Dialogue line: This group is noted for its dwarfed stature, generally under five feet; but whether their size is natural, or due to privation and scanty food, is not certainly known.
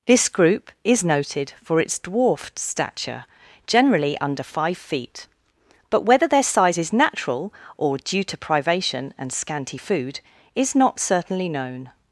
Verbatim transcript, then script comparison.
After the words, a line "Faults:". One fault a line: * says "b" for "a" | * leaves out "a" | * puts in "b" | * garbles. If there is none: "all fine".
This group is noted for its dwarfed stature, generally under five feet; but whether their size is natural, or due to privation and scanty food, is not certainly known.
Faults:
all fine